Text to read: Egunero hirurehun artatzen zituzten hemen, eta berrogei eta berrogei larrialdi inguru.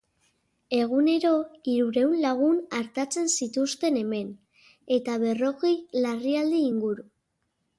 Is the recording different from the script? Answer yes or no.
yes